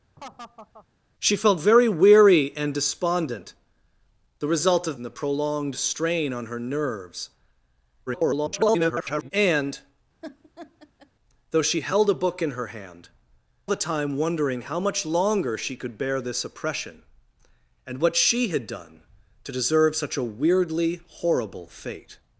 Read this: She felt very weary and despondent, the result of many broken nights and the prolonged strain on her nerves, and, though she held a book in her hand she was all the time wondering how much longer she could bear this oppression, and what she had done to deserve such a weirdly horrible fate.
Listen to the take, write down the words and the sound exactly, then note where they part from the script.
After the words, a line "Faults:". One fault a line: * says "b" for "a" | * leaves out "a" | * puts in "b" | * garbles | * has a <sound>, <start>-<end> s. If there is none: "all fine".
She felt very weary and despondent, the result of and the prolonged strain on her nerves, [garbled] and, though she held a book in her hand the time wondering how much longer she could bear this oppression, and what she had done to deserve such a weirdly horrible fate.
Faults:
* has a laugh, 0.2-0.9 s
* leaves out "many broken nights"
* garbles
* has a laugh, 10.2-11.1 s
* leaves out "she was all"